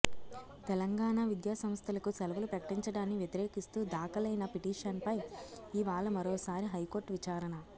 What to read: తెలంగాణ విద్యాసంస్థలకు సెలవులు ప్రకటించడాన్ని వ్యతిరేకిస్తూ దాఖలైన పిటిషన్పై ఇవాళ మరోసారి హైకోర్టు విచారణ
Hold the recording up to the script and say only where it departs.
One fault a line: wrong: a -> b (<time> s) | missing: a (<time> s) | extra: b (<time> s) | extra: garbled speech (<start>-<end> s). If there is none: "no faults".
no faults